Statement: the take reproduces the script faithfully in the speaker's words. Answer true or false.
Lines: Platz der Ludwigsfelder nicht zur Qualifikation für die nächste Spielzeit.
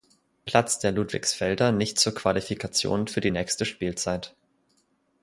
true